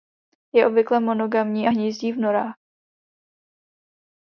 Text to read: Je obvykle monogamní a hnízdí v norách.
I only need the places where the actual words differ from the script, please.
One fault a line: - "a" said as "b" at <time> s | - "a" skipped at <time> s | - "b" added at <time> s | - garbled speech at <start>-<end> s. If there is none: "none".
none